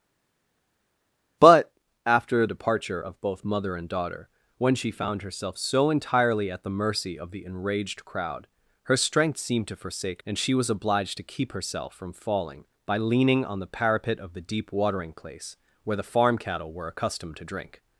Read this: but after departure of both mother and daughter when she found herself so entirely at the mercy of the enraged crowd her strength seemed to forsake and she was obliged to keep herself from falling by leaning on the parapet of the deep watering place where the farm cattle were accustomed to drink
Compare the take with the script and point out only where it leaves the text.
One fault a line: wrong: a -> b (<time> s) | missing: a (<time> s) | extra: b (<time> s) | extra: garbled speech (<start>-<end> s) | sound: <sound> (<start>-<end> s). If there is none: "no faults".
no faults